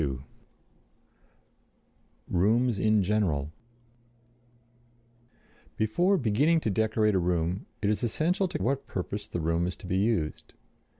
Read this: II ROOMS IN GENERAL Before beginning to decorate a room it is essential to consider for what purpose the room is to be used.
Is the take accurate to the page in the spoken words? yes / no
no